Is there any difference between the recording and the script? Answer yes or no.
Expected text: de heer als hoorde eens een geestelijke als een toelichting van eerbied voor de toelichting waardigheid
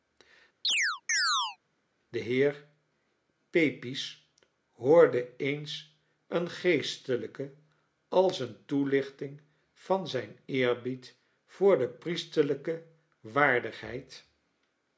yes